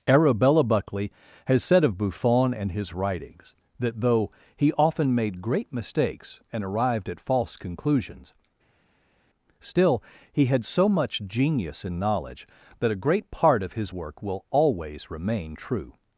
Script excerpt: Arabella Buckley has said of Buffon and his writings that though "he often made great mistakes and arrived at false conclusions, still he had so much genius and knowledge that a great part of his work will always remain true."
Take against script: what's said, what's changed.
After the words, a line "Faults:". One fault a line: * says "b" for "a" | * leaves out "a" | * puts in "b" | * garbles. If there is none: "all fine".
Arabella Buckley has said of Buffon and his writings that though "he often made great mistakes and arrived at false conclusions, still he had so much genius and knowledge that a great part of his work will always remain true."
Faults:
all fine